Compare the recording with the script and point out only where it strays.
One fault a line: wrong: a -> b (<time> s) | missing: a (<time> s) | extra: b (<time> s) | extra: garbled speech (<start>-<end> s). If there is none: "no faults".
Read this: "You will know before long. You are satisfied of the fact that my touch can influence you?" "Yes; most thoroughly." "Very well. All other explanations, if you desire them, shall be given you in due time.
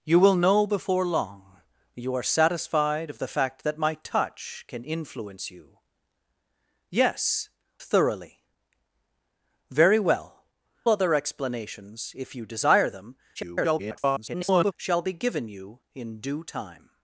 missing: most (7.5 s)
missing: All (10.4 s)
extra: garbled speech (13.3-14.7 s)